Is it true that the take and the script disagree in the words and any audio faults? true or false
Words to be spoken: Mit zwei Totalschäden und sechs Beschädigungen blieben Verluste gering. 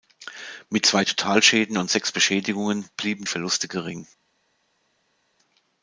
false